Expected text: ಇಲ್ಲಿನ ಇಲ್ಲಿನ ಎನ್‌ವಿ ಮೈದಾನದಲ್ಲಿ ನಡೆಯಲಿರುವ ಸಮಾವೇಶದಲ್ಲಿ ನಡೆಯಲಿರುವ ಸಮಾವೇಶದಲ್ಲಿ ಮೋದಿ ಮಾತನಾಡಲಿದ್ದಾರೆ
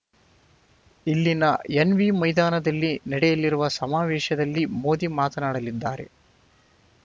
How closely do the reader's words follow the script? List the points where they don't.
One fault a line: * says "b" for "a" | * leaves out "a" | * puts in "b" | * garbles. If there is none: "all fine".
* leaves out "ಇಲ್ಲಿನ"
* leaves out "ನಡೆಯಲಿರುವ ಸಮಾವೇಶದಲ್ಲಿ"